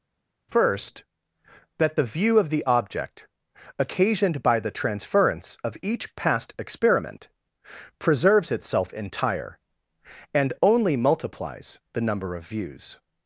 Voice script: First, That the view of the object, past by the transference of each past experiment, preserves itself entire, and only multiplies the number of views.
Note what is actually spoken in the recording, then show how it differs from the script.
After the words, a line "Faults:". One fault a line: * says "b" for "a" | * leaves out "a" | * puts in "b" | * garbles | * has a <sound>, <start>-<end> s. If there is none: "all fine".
First, That the view of the object, occasioned by the transference of each past experiment, preserves itself entire, and only multiplies the number of views.
Faults:
* says "occasioned" for "past"